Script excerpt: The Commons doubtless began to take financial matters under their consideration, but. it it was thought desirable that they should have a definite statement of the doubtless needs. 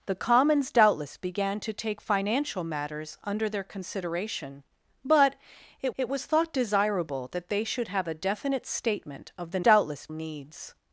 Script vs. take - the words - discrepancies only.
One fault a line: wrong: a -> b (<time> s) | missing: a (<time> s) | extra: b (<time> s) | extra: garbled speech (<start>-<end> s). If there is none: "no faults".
no faults